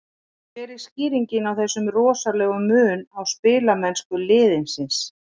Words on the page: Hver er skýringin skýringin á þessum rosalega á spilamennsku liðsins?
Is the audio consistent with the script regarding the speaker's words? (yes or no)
no